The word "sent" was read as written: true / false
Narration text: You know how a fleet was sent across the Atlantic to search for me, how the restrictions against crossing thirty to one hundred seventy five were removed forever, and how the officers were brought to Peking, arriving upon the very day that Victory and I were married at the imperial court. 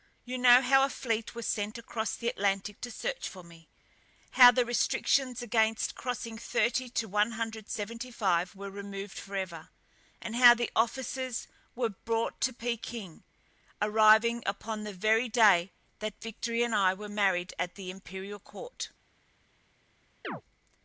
true